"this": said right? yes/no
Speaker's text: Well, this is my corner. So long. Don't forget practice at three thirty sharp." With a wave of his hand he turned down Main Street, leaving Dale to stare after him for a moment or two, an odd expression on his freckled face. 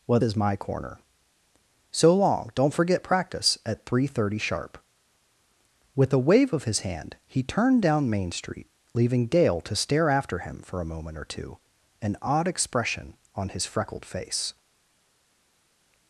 no